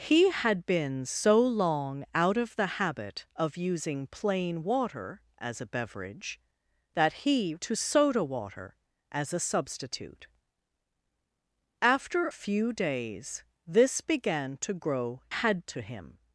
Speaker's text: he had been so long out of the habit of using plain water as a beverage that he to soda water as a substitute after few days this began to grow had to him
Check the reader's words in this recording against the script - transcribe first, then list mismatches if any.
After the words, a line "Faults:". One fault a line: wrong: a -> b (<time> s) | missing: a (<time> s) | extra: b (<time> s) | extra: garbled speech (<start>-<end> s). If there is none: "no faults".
he had been so long out of the habit of using plain water as a beverage that he to soda water as a substitute after few days this began to grow had to him
Faults:
no faults